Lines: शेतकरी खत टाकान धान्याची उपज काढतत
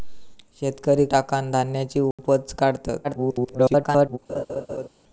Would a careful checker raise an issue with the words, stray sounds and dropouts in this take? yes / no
yes